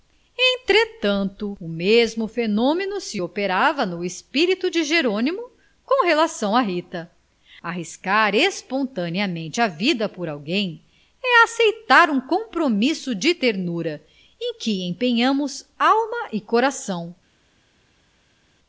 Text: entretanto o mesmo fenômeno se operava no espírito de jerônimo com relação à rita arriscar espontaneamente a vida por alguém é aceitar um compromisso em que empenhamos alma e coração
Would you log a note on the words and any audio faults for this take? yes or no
yes